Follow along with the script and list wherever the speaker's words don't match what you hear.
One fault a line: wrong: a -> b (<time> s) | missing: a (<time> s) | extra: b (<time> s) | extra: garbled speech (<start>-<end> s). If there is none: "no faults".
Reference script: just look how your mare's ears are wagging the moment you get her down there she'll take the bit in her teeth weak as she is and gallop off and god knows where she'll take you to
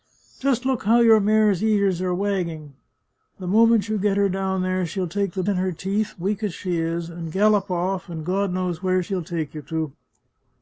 missing: bit (5.4 s)